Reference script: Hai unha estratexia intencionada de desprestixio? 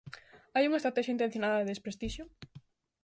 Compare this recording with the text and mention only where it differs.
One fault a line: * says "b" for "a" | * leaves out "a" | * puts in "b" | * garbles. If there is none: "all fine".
all fine